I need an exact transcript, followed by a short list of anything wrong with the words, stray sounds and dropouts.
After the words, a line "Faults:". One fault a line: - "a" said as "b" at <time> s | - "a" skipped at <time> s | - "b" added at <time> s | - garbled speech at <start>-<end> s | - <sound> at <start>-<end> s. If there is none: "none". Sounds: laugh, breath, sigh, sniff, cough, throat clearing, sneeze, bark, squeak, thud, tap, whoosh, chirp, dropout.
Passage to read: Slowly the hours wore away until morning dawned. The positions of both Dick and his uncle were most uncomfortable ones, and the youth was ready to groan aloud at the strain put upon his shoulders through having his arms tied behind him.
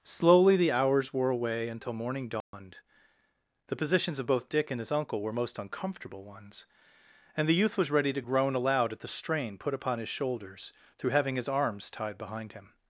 Slowly the hours wore away until morning dawned. The positions of both Dick and his uncle were most uncomfortable ones, and the youth was ready to groan aloud at the strain put upon his shoulders through having his arms tied behind him.
Faults:
- dropout at 2.4-2.5 s